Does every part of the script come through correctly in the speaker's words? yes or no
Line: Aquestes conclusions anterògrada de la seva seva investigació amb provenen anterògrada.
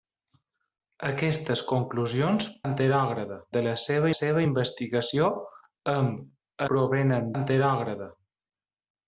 yes